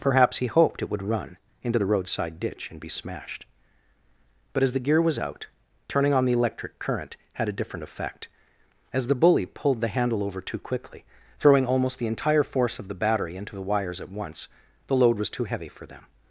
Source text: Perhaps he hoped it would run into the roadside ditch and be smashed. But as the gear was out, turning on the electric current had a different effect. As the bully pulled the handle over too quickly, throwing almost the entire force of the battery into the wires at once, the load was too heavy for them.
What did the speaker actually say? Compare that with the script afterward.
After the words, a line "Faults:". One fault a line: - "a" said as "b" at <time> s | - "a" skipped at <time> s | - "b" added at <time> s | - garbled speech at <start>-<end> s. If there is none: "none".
Perhaps he hoped it would run into the roadside ditch and be smashed. But as the gear was out, turning on the electric current had a different effect. As the bully pulled the handle over too quickly, throwing almost the entire force of the battery into the wires at once, the load was too heavy for them.
Faults:
none